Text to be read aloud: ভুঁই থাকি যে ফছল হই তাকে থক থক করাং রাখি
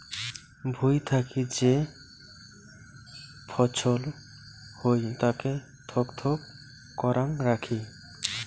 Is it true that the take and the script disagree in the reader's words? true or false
false